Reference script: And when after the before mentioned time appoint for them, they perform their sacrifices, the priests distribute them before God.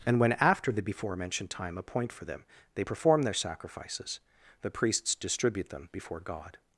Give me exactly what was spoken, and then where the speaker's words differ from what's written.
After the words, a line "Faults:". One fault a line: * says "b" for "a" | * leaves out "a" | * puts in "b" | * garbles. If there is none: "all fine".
And when after the before mentioned time appoint for them, they perform their sacrifices, the priests distribute them before God.
Faults:
all fine